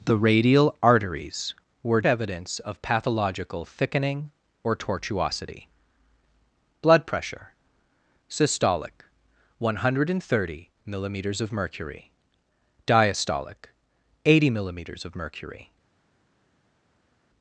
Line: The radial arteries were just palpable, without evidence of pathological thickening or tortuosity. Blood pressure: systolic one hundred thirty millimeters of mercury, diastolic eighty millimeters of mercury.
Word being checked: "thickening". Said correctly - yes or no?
yes